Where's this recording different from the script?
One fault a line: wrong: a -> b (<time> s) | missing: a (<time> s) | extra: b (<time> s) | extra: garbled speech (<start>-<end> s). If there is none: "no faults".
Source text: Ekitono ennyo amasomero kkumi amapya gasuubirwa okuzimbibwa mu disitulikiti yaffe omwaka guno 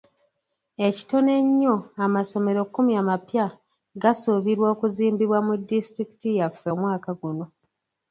no faults